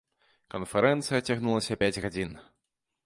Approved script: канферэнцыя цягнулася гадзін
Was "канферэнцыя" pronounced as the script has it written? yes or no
yes